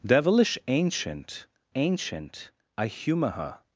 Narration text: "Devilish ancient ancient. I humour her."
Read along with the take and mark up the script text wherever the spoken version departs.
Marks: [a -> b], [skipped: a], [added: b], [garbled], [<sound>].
"Devilish ancient ancient. I humour her."